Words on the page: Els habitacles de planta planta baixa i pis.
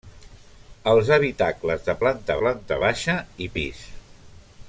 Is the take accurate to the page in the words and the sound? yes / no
yes